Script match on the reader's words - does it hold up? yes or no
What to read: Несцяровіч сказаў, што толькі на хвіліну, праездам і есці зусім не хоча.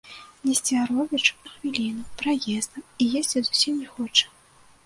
no